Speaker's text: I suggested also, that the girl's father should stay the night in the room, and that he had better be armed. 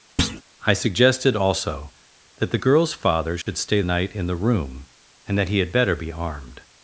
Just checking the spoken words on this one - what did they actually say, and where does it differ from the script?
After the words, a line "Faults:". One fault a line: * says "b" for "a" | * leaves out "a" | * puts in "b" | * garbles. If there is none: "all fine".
I suggested also, that the girl's father should stay night in the room, and that he had better be armed.
Faults:
* leaves out "the"